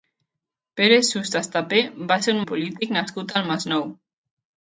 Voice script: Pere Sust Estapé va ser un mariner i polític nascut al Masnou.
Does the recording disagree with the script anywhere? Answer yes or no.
yes